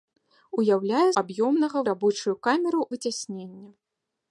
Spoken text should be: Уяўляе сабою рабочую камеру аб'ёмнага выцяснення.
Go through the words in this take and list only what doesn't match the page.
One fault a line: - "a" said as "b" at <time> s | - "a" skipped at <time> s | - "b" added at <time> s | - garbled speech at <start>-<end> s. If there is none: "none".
- "сабою" said as "аб'ёмнага" at 1.2 s
- "аб'ёмнага" skipped at 2.8 s